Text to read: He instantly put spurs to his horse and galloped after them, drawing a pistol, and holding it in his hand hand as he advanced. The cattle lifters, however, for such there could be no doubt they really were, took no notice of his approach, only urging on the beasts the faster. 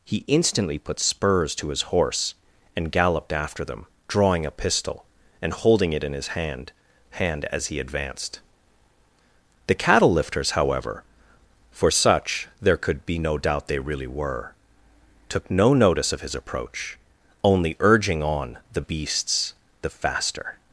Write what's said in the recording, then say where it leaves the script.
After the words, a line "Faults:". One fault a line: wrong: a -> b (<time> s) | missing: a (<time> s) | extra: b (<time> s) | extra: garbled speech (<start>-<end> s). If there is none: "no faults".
He instantly put spurs to his horse and galloped after them, drawing a pistol, and holding it in his hand hand as he advanced. The cattle lifters, however, for such there could be no doubt they really were, took no notice of his approach, only urging on the beasts the faster.
Faults:
no faults